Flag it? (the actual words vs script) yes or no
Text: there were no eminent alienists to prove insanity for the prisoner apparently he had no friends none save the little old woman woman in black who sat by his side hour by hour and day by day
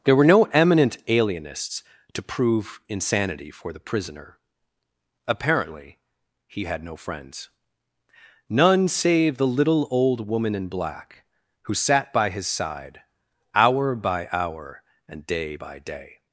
yes